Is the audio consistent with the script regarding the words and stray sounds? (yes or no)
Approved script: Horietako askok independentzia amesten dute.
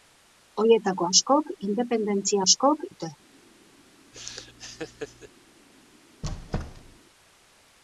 no